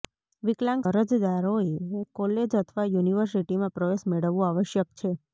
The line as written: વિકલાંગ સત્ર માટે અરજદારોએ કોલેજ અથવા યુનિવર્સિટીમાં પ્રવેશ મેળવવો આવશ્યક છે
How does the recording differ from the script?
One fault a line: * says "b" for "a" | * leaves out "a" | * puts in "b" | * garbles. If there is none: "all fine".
* leaves out "સત્ર માટે"